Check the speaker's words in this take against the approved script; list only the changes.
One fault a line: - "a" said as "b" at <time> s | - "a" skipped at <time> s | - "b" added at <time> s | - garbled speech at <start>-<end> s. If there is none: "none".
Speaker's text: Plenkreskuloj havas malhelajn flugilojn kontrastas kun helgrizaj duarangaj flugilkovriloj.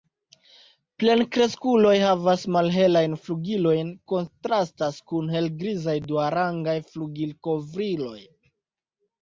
none